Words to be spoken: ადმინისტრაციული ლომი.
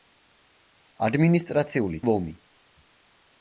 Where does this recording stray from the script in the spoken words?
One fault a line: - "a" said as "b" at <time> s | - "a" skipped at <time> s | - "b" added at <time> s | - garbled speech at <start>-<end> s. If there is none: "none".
none